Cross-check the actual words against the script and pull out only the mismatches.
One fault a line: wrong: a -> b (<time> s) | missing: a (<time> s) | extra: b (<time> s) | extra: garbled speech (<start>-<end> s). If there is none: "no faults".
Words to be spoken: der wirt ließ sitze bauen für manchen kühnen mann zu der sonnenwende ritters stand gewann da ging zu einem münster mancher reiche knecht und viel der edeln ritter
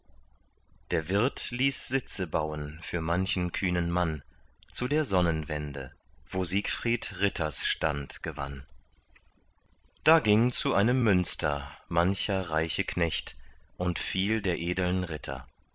extra: wo siegfried (6.3 s)